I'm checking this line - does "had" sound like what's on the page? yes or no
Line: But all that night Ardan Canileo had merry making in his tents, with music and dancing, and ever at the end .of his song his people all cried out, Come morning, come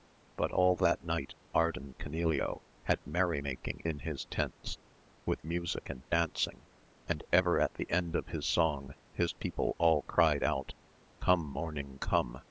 yes